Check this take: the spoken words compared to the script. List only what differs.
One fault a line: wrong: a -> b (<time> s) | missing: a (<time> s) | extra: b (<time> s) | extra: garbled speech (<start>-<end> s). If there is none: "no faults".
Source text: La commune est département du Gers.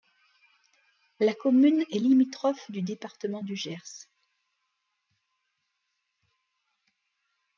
extra: limitrophe du (2.0 s)